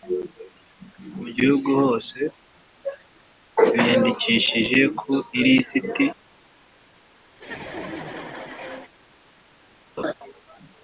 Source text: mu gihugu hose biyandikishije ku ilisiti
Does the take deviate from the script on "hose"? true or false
false